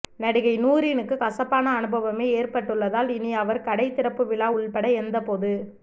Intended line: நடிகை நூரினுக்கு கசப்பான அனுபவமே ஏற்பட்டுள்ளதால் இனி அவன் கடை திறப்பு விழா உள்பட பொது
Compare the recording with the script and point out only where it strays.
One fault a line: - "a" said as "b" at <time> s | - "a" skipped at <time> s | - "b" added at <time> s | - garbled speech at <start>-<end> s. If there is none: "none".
- "அவன்" said as "அவர்" at 3.3 s
- "எந்த" added at 5.0 s